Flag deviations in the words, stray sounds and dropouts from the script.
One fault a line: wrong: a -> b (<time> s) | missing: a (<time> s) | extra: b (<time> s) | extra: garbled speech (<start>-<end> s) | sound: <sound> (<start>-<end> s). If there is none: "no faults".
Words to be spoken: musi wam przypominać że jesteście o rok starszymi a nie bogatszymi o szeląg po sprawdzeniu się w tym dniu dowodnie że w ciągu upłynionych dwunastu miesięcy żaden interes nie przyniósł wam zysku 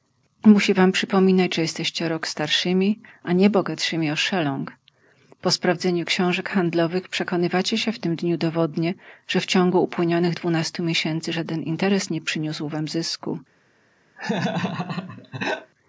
extra: książek handlowych przekonywacie (6.0 s)
sound: laugh (14.2-15.7 s)